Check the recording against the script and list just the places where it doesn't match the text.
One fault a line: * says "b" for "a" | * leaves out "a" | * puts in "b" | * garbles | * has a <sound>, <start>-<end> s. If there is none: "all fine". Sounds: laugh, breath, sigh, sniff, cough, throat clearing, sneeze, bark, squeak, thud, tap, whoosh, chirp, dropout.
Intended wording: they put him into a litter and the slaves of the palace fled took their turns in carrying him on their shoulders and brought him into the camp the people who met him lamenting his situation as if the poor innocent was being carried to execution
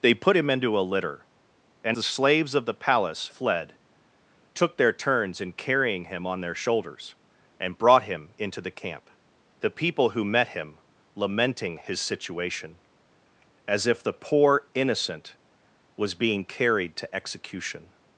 all fine